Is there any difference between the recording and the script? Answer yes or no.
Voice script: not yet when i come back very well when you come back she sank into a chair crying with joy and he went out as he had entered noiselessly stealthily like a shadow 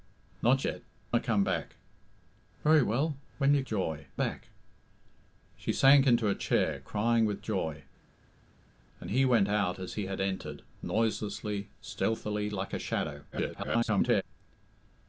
yes